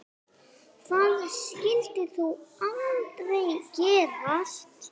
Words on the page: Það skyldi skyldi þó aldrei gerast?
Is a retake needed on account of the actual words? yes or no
yes